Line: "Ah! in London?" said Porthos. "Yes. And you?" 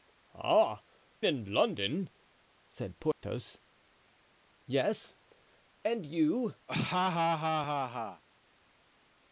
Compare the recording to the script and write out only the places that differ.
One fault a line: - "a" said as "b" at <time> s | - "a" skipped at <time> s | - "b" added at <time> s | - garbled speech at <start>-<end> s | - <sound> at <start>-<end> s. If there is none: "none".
- dropout at 3.1-3.2 s
- laugh at 6.7-8.2 s